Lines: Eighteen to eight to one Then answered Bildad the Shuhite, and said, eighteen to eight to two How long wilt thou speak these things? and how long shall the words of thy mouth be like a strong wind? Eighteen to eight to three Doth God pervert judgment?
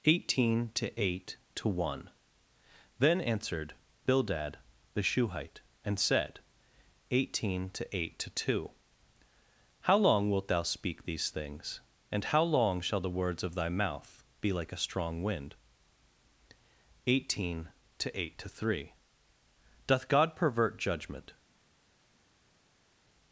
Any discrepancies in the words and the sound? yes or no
no